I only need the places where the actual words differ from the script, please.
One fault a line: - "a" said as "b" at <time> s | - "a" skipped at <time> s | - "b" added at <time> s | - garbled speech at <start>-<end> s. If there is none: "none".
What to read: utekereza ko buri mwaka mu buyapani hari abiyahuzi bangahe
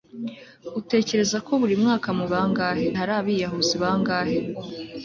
- "buyapani" said as "bangahe" at 2.3 s